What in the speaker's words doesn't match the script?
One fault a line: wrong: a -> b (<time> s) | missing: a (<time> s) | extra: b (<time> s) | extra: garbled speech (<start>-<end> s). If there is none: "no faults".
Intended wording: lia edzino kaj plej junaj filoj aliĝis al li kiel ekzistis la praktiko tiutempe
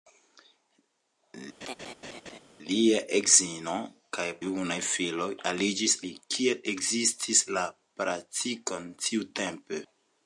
missing: plej (4.3 s)
missing: al (6.0 s)